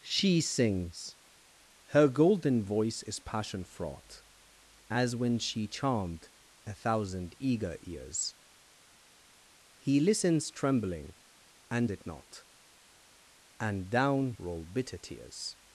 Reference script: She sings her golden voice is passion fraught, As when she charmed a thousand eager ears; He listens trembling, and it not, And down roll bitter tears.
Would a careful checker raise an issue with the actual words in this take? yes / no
no